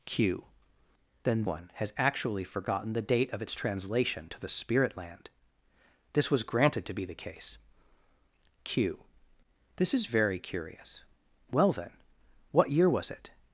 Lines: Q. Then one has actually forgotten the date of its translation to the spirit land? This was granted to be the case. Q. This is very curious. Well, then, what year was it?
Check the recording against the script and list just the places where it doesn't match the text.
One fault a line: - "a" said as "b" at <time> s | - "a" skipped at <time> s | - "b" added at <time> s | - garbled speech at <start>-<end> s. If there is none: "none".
none